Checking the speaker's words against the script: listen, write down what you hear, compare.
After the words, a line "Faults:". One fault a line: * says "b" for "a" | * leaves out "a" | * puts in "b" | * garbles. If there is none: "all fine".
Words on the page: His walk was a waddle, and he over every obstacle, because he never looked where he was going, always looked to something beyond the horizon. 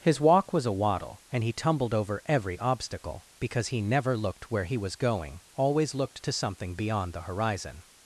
His walk was a waddle, and he tumbled over every obstacle, because he never looked where he was going, always looked to something beyond the horizon.
Faults:
* puts in "tumbled"